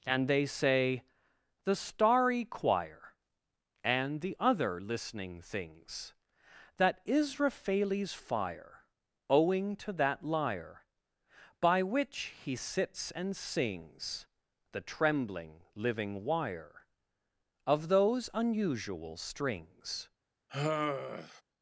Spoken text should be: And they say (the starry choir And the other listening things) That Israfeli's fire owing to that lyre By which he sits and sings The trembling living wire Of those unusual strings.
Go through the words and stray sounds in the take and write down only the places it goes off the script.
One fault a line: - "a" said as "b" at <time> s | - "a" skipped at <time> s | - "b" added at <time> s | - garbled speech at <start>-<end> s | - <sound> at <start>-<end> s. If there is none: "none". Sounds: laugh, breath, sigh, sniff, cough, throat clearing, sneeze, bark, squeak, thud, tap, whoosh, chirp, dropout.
- sigh at 20.5-21.4 s